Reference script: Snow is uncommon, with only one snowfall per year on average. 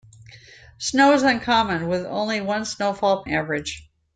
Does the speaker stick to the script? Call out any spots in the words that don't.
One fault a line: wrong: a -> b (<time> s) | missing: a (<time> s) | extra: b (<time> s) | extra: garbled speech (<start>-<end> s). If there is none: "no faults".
missing: per year on (3.2 s)